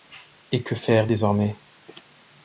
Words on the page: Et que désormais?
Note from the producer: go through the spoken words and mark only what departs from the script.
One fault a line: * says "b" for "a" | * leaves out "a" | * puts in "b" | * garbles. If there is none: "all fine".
* puts in "faire"